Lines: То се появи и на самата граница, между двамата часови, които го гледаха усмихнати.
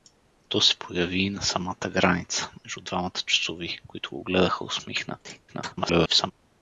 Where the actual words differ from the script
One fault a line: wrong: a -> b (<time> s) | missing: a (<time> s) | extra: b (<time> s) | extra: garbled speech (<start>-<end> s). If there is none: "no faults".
extra: garbled speech (5.5-6.3 s)